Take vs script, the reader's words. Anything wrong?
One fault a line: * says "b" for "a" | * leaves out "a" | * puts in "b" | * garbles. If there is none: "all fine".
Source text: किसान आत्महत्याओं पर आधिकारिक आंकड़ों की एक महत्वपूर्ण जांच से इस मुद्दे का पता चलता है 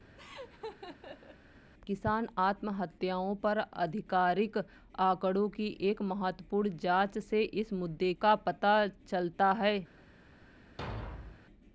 all fine